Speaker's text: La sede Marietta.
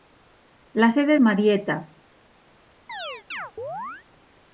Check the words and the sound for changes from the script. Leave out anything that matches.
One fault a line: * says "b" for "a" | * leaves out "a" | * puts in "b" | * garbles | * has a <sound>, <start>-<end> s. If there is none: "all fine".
* has a chirp, 2.9-4.1 s